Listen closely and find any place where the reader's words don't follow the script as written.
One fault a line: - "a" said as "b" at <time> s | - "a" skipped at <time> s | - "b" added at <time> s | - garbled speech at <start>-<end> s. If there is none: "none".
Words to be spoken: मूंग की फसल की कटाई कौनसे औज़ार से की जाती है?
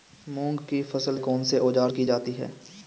- "की कटाई" skipped at 1.2 s
- "से" skipped at 1.9 s